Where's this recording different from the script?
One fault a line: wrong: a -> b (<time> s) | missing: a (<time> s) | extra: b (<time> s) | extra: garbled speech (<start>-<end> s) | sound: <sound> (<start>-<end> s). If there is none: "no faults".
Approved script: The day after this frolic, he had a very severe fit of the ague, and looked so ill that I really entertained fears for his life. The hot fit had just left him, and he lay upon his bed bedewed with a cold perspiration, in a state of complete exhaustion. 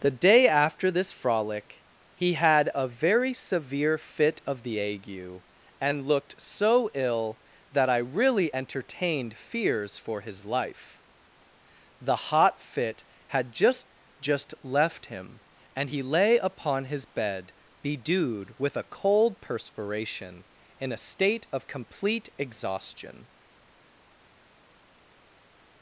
extra: just (14.2 s)